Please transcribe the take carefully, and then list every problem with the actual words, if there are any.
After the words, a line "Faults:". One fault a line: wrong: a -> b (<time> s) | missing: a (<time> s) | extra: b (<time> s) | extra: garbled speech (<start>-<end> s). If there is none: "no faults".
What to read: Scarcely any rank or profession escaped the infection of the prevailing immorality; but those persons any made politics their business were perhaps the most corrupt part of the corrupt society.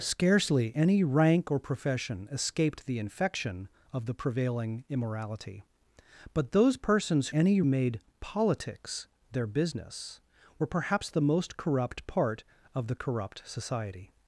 Scarcely any rank or profession escaped the infection of the prevailing immorality; but those persons any made politics their business were perhaps the most corrupt part of the corrupt society.
Faults:
no faults